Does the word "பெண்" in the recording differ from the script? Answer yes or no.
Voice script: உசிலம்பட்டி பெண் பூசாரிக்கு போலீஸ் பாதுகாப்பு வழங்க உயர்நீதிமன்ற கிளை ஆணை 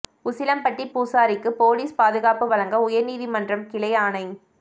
yes